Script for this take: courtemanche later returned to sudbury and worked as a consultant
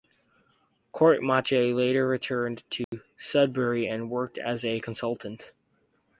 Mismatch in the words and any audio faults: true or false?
true